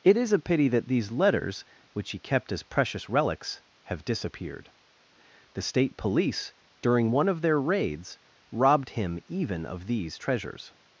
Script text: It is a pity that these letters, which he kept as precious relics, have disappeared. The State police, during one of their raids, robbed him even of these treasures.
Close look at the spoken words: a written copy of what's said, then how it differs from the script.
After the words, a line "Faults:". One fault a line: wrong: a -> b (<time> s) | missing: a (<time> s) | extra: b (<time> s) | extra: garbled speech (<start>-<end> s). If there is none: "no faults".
It is a pity that these letters, which he kept as precious relics, have disappeared. The State police, during one of their raids, robbed him even of these treasures.
Faults:
no faults